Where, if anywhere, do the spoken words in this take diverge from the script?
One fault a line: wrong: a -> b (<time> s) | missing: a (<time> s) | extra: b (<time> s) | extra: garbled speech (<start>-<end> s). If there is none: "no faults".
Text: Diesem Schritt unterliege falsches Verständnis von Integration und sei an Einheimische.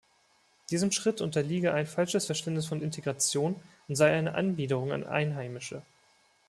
extra: ein (1.8 s)
extra: eine Anbiederung (4.1 s)